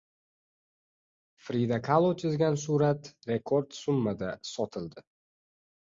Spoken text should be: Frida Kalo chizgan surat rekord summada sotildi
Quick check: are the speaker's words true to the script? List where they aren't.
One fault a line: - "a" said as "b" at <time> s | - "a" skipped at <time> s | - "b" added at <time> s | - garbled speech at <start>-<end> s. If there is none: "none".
none